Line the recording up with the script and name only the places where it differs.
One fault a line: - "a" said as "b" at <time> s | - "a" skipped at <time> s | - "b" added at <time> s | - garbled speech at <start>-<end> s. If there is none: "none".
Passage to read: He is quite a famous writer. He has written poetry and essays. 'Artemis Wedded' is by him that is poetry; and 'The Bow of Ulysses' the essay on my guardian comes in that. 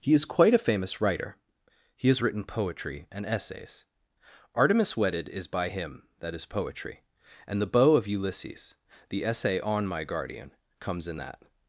none